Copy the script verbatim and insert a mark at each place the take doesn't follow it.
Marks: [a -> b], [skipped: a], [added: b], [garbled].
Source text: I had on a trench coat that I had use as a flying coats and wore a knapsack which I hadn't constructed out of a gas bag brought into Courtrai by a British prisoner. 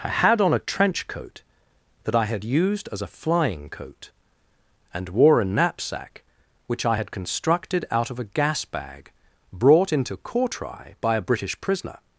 I had on a trench coat that I had [use -> used] as a flying [coats -> coat] and wore a knapsack which I [hadn't -> had] constructed out of a gas bag brought into Courtrai by a British prisoner.